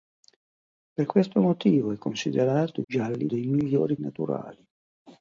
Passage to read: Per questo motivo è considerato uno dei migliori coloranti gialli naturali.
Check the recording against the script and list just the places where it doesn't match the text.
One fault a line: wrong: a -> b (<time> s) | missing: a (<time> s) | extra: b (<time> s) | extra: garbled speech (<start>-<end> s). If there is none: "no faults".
wrong: uno -> gialli (2.8 s)
missing: coloranti gialli (4.0 s)